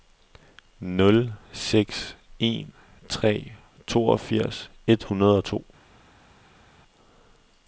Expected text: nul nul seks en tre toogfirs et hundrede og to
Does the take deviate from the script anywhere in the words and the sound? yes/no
yes